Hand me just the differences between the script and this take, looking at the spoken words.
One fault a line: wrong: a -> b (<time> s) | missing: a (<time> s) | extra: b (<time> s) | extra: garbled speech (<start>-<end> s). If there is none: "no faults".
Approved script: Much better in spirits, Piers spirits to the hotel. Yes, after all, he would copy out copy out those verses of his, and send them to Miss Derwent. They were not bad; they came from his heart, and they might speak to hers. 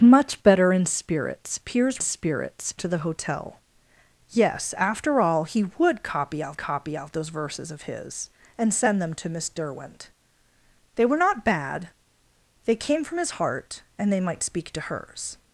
no faults